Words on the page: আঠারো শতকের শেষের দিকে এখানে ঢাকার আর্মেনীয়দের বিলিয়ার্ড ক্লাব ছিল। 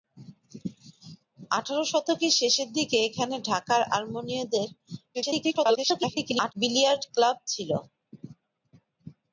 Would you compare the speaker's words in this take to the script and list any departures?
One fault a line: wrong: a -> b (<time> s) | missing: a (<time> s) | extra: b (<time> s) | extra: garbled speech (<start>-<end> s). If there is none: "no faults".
extra: garbled speech (5.1-6.5 s)